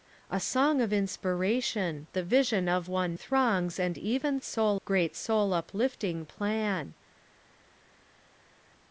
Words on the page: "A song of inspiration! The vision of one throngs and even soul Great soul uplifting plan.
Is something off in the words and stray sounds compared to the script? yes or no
no